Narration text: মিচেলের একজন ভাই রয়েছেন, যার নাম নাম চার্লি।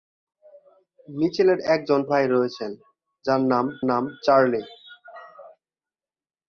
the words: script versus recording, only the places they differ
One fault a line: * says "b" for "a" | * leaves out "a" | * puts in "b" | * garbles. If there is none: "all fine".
all fine